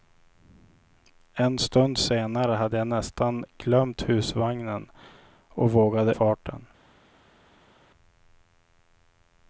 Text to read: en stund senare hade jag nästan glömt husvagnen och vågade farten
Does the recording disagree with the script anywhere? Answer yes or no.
no